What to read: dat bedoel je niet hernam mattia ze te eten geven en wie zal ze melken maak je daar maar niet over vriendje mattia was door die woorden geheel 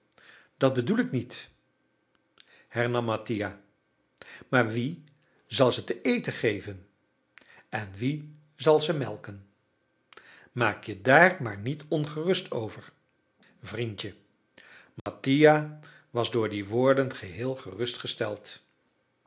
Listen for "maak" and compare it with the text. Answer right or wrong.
right